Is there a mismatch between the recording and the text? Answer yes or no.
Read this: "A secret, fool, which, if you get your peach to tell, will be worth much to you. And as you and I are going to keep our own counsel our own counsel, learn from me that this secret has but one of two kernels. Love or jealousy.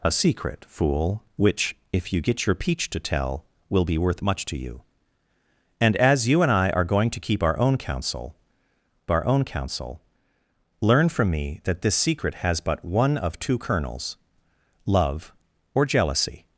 no